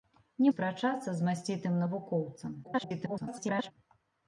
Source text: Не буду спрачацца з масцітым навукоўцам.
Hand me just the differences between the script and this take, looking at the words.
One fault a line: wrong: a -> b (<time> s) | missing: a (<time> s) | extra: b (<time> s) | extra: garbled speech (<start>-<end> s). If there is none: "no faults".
missing: буду (0.5 s)
extra: garbled speech (2.6-3.7 s)